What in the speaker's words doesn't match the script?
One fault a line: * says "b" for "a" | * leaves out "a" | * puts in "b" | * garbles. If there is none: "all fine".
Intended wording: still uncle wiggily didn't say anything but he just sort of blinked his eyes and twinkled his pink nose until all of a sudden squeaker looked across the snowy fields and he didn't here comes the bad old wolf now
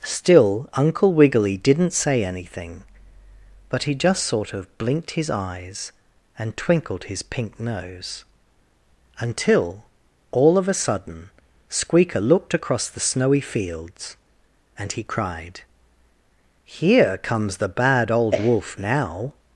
* says "cried" for "didn't"